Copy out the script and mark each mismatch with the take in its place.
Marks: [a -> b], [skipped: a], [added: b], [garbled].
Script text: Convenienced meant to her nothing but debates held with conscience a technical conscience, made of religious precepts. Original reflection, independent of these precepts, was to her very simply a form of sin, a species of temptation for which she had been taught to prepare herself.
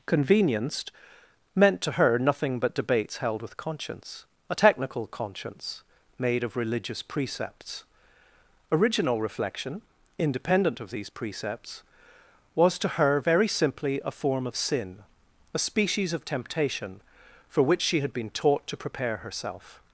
Convenienced meant to her nothing but debates held with conscience a technical conscience, made of religious precepts. Original reflection, independent of these precepts, was to her very simply a form of sin, a species of temptation for which she had been taught to prepare herself.